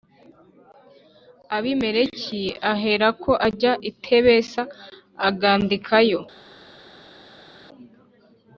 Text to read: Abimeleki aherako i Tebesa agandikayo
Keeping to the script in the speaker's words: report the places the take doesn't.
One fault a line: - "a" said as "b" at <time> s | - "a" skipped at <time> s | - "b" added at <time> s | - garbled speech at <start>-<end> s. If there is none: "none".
- "ajya" added at 3.5 s